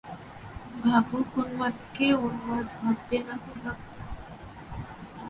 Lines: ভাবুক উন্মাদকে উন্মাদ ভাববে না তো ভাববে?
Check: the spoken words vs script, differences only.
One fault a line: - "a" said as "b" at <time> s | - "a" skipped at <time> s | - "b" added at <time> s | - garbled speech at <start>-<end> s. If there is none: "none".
none